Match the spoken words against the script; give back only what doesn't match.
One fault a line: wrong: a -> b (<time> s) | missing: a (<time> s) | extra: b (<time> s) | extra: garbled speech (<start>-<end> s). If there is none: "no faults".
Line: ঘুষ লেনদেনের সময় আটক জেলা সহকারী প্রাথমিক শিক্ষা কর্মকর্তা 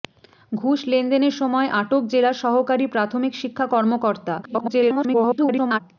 extra: garbled speech (4.4-5.8 s)